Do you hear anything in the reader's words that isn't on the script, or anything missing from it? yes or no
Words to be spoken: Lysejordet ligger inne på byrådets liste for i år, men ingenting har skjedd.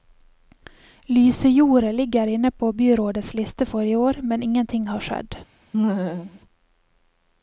no